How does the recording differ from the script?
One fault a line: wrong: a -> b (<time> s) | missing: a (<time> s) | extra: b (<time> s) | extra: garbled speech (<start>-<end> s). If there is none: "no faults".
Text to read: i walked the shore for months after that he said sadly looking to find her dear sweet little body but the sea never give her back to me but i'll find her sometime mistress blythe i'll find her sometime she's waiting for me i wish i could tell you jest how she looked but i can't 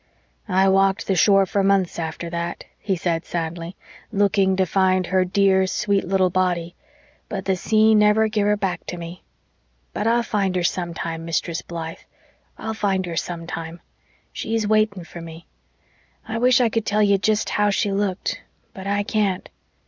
no faults